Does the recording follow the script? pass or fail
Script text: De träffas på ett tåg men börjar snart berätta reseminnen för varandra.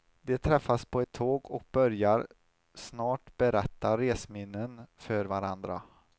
fail